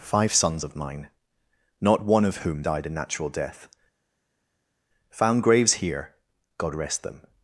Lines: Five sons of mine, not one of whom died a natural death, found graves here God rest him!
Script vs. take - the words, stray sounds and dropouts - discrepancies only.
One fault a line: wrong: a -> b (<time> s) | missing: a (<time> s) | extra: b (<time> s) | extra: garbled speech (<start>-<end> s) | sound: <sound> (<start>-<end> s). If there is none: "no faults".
wrong: him -> them (7.0 s)